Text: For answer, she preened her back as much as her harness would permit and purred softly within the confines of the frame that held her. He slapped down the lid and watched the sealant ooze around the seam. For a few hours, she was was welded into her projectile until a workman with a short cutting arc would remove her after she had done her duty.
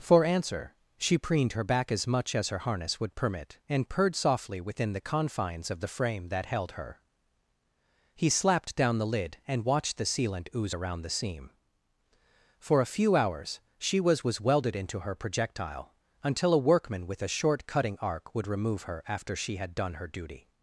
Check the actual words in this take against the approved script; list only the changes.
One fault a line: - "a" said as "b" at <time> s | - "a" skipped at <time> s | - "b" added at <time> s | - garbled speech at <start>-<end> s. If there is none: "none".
none